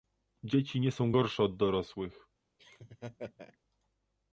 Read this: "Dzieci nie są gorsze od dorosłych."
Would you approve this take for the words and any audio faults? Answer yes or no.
no